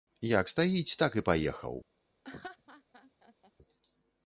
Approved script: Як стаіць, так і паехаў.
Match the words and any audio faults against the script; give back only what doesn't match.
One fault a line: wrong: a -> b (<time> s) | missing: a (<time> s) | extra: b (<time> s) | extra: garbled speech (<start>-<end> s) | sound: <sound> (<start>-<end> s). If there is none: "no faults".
sound: laugh (2.2-3.5 s)